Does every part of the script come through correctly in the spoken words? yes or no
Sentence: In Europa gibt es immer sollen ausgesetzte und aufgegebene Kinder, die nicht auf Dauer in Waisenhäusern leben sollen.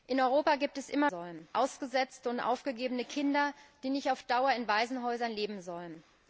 yes